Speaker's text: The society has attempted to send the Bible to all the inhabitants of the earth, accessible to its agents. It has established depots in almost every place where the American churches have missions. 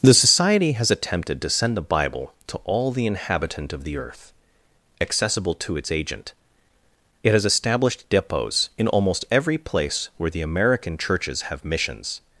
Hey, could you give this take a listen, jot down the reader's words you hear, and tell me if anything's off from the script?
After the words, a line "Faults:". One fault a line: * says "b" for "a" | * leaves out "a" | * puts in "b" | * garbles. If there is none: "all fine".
The society has attempted to send the Bible to all the inhabitant of the earth, accessible to its agent. It has established depots in almost every place where the American churches have missions.
Faults:
* says "inhabitant" for "inhabitants"
* says "agent" for "agents"